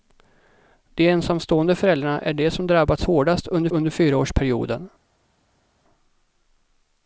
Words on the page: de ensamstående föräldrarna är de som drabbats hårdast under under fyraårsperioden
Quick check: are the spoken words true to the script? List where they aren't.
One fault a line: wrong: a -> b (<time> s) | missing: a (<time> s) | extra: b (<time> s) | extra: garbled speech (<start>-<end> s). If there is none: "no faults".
no faults